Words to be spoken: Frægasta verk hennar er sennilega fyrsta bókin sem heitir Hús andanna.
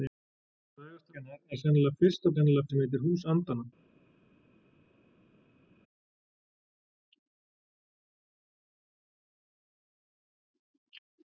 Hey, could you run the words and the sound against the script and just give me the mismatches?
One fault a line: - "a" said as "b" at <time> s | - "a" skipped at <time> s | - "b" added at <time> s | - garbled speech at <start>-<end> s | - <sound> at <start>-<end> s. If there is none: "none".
- "verk" skipped at 1.1 s
- "bókin" said as "sennilega" at 2.3 s